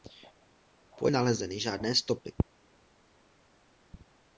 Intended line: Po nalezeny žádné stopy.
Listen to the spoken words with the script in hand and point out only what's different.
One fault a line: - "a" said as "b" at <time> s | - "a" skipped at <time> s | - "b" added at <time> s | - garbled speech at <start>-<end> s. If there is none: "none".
none